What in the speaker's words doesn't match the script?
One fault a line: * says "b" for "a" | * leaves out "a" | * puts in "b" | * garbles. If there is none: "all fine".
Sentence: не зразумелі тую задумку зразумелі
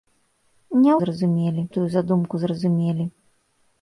all fine